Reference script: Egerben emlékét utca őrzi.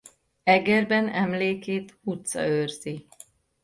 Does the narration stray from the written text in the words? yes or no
no